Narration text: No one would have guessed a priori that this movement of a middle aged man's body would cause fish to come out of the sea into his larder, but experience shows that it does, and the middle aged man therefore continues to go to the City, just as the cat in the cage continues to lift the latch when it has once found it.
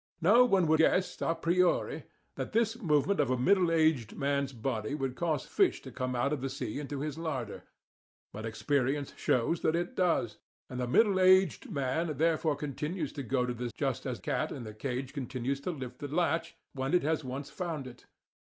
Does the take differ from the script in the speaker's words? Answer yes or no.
yes